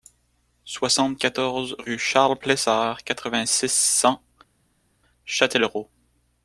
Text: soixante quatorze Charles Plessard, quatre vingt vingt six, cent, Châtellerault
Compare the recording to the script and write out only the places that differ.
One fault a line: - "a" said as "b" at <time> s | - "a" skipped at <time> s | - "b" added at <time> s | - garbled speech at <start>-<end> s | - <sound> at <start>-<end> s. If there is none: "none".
- "rue" added at 1.8 s
- "vingt" skipped at 3.5 s